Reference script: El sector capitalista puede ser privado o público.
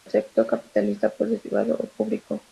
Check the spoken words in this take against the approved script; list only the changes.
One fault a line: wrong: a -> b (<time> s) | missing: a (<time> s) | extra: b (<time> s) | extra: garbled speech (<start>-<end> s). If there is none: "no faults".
missing: ser (1.4 s)